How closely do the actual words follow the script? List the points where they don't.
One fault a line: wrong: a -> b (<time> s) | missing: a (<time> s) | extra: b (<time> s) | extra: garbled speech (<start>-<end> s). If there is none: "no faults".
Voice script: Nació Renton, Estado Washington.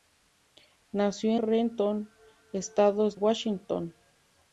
no faults